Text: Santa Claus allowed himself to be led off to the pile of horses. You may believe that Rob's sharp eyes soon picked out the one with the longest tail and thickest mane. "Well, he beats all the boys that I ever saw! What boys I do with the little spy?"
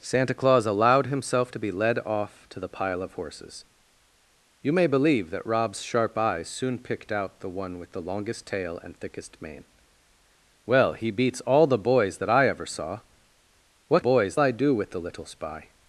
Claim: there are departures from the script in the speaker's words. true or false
false